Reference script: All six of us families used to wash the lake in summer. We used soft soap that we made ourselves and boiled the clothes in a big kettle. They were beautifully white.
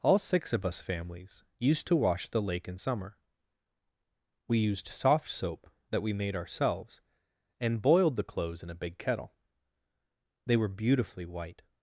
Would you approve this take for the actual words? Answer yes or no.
yes